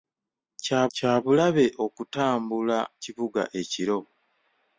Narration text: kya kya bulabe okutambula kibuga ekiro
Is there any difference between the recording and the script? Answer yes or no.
no